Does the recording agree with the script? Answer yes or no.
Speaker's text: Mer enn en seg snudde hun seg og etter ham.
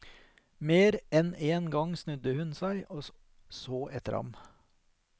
no